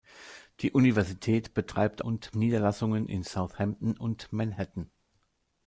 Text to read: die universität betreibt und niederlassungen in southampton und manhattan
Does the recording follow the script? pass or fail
pass